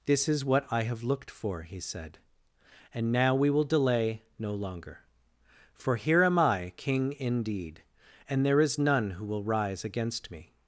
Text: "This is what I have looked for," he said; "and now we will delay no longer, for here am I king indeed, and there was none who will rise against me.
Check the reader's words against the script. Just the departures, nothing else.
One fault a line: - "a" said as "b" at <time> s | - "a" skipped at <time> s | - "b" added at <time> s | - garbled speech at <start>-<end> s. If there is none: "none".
- "was" said as "is" at 8.6 s